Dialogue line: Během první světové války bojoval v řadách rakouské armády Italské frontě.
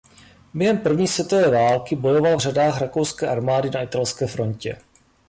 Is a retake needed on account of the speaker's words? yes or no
yes